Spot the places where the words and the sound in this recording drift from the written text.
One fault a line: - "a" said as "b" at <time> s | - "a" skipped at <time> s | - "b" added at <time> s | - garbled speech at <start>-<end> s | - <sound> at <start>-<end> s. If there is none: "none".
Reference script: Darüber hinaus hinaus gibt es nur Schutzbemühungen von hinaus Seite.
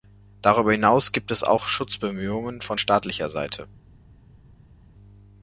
- "hinaus" skipped at 1.1 s
- "nur" said as "auch" at 1.4 s
- "hinaus" said as "staatlicher" at 2.8 s